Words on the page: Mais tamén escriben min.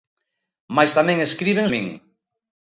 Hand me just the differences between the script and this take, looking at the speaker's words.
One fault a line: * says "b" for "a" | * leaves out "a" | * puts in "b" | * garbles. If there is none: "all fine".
all fine